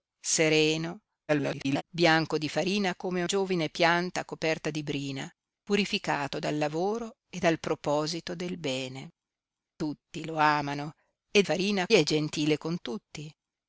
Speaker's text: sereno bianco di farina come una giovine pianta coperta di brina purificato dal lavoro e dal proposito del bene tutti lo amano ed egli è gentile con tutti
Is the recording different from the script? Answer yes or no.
yes